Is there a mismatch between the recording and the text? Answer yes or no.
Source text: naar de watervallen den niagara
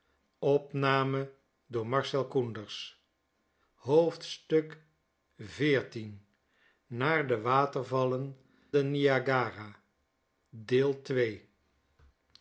no